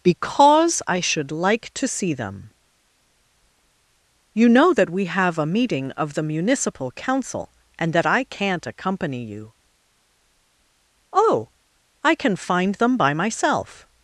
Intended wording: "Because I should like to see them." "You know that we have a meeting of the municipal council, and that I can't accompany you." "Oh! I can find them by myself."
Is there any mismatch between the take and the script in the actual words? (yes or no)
no